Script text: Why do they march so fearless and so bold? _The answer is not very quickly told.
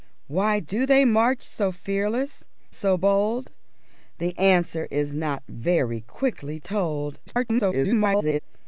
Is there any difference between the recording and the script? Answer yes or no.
yes